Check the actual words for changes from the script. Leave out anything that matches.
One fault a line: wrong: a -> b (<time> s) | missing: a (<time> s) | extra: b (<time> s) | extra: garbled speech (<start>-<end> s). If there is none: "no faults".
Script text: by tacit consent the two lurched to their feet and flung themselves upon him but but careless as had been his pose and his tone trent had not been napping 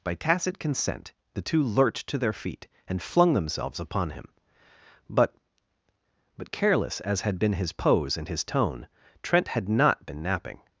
no faults